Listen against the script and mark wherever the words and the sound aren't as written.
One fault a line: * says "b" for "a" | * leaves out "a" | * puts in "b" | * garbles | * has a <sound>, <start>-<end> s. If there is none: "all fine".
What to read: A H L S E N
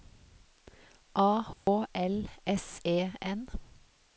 * has a dropout, 1.5-1.7 s